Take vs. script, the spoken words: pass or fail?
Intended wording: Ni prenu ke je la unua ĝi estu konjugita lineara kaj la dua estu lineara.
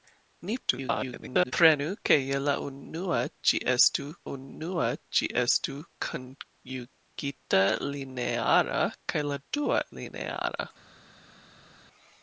fail